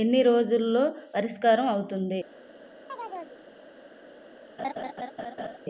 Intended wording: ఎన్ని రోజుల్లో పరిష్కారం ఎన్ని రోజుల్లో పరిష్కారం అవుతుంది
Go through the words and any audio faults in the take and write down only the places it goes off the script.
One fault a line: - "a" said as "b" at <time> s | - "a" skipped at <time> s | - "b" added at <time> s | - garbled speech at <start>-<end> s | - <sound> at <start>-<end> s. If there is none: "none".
- "ఎన్ని రోజుల్లో పరిష్కారం" skipped at 1.7 s
- chirp at 2.9-3.4 s
- laugh at 4.6-5.6 s